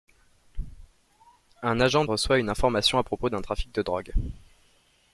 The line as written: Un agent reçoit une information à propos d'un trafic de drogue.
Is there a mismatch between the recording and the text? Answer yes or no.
no